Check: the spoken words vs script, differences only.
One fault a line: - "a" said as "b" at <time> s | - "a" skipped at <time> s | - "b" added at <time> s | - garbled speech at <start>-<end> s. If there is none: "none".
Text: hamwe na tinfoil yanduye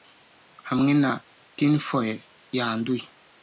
none